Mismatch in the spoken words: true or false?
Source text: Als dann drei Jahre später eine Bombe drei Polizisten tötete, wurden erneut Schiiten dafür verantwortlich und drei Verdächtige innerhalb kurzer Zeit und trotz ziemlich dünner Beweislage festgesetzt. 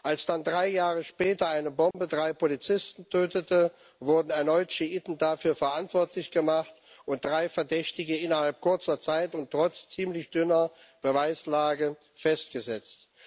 true